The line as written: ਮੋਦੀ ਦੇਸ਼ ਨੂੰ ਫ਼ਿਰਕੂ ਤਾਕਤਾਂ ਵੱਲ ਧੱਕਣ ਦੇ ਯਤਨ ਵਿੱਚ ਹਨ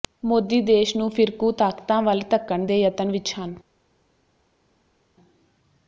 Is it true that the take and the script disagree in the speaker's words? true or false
false